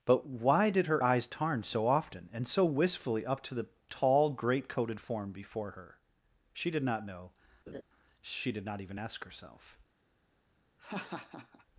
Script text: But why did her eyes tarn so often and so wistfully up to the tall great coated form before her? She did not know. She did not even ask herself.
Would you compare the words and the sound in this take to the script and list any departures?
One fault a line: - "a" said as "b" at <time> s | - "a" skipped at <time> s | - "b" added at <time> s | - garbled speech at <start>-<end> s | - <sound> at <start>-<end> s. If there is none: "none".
- laugh at 7.7-7.8 s
- laugh at 10.8-11.7 s